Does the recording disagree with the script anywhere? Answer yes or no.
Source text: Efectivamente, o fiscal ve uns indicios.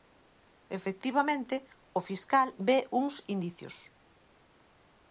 no